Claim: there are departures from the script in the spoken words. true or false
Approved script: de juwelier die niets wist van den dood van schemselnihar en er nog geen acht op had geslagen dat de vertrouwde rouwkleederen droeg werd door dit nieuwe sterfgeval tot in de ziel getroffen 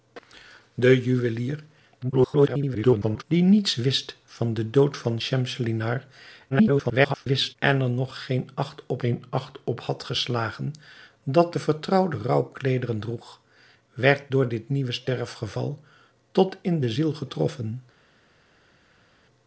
true